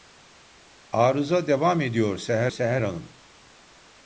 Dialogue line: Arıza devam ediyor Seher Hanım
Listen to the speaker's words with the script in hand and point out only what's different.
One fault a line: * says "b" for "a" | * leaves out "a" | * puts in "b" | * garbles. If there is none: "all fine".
* puts in "Seher"